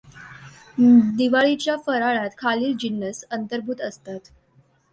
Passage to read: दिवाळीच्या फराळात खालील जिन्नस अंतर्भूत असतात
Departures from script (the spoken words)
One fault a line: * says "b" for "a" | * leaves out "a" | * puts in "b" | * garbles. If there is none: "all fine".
all fine